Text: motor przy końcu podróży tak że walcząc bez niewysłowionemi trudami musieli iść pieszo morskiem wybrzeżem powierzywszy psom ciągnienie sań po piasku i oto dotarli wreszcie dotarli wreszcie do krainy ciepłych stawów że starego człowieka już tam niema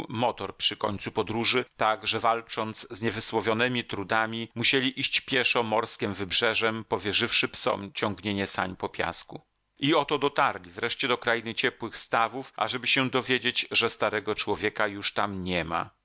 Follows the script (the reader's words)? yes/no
no